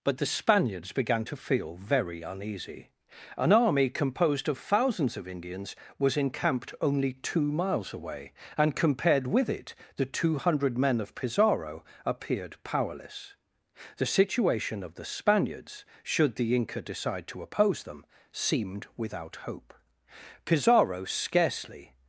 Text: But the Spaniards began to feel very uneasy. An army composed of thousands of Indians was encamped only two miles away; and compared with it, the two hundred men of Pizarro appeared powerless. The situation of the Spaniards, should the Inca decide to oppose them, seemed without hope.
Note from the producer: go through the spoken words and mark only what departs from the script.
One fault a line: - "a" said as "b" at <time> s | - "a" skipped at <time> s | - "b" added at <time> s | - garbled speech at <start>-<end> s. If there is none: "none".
- "Pizarro scarcely" added at 20.5 s